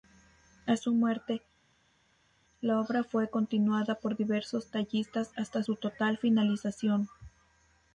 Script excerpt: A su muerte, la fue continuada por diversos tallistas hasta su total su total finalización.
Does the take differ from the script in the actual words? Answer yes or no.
yes